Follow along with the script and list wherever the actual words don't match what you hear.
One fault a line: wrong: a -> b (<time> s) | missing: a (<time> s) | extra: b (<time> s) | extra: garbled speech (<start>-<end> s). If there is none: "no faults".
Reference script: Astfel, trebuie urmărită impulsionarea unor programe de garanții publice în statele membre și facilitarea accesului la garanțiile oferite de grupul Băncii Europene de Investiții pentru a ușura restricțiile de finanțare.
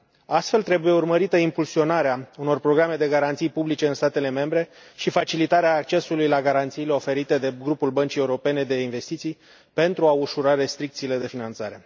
no faults